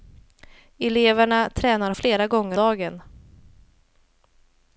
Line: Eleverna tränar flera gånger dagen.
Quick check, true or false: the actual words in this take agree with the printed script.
true